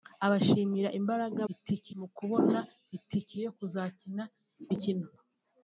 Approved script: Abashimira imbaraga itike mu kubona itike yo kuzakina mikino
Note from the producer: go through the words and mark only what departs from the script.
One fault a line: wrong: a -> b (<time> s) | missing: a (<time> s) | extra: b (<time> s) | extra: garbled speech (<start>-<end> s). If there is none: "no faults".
no faults